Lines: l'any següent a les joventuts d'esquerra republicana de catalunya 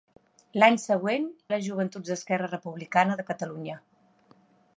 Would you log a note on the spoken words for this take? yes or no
no